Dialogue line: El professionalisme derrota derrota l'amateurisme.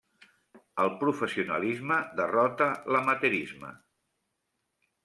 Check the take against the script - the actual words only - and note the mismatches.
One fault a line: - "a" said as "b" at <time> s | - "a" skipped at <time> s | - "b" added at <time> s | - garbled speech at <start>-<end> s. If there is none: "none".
- "derrota" skipped at 2.7 s